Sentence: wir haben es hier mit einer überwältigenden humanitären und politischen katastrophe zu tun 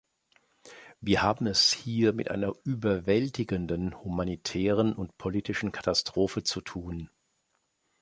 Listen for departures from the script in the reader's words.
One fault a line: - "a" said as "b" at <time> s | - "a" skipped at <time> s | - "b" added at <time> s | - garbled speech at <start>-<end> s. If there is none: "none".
none